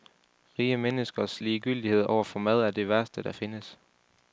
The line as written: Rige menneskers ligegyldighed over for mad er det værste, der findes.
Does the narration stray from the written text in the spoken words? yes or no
no